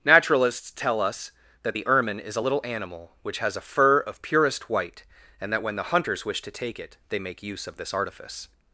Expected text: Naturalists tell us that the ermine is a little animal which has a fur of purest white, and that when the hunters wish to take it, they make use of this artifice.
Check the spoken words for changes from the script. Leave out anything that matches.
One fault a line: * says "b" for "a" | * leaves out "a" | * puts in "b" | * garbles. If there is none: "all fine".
all fine